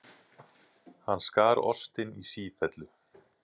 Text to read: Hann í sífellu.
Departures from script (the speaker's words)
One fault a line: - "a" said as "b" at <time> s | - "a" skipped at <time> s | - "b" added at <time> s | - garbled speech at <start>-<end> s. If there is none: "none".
- "skar ostinn" added at 1.3 s